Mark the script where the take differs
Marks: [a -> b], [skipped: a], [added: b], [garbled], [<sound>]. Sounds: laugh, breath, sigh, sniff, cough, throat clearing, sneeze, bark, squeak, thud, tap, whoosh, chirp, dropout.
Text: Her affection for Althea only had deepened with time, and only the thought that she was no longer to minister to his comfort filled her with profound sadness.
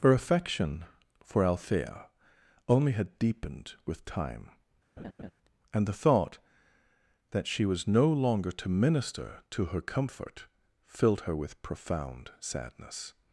Her affection for Althea only had deepened with time, [laugh] and [skipped: only] the thought that she was no longer to minister to [his -> her] comfort filled her with profound sadness.